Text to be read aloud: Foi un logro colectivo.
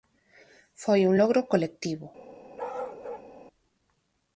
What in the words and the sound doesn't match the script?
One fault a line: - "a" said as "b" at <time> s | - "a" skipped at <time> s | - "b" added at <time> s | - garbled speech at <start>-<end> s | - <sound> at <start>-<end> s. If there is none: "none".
- bark at 2.6-3.3 s